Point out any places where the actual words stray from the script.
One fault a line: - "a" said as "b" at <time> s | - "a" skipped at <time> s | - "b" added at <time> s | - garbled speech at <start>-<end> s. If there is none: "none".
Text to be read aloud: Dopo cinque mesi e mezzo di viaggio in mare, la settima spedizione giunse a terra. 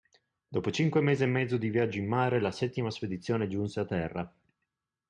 none